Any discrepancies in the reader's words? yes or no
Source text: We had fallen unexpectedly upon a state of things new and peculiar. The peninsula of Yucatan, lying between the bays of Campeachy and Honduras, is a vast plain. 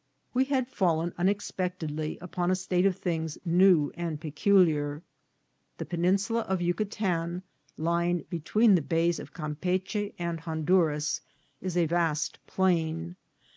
no